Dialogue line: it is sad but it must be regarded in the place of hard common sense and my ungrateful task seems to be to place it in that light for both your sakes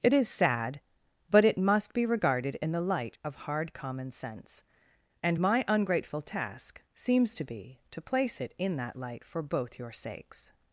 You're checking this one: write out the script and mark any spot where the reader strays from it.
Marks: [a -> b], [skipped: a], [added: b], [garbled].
it is sad but it must be regarded in the [place -> light] of hard common sense and my ungrateful task seems to be to place it in that light for both your sakes